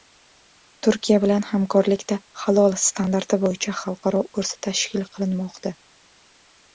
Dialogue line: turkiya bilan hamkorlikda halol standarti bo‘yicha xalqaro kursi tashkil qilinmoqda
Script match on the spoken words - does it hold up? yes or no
yes